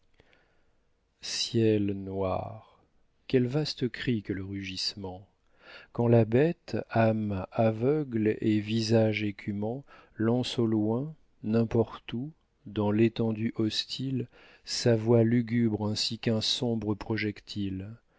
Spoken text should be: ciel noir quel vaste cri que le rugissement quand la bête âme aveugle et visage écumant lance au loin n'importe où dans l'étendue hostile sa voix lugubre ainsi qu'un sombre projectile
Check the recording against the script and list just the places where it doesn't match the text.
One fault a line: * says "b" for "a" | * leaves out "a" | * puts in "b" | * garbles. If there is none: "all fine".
all fine